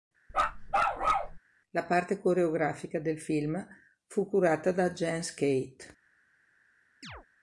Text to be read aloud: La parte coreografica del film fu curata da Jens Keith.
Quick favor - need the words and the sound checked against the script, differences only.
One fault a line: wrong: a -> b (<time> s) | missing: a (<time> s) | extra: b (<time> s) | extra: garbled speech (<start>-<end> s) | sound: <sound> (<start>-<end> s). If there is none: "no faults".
sound: bark (0.3-1.4 s)
sound: chirp (7.0-7.3 s)